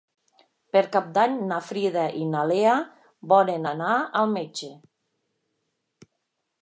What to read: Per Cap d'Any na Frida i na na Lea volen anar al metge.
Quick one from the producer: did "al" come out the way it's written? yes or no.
yes